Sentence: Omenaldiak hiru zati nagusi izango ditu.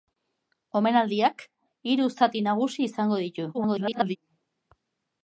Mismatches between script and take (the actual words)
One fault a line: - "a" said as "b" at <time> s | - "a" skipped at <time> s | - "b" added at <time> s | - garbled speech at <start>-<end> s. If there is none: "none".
- garbled speech at 3.5-4.2 s